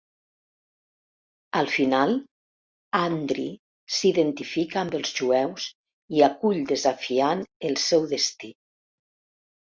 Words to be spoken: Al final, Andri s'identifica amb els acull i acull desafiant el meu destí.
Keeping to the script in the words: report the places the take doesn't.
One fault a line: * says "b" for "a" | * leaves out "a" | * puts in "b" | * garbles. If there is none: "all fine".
* says "jueus" for "acull"
* says "seu" for "meu"